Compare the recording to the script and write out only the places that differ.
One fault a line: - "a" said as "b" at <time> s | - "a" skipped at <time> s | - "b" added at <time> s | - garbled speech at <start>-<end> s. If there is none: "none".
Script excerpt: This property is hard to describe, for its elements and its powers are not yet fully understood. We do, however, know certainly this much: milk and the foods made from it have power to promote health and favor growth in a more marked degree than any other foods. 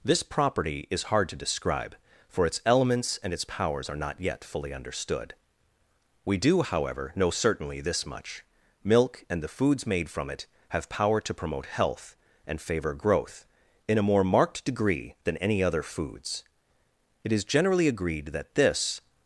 - "It is generally agreed that this" added at 17.2 s